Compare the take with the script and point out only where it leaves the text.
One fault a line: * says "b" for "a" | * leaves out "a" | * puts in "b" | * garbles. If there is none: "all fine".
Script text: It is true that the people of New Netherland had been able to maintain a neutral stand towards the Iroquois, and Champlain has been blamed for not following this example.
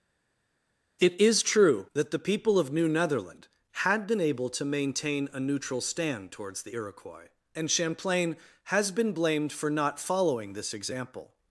all fine